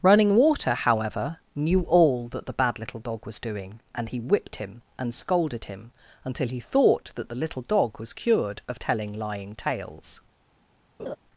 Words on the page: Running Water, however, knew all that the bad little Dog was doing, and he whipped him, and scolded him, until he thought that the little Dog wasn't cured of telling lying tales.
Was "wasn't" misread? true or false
true